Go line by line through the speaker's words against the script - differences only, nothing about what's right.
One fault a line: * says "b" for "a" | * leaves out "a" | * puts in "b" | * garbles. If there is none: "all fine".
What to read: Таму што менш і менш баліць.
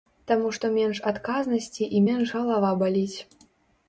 * puts in "адказнасці"
* puts in "галава"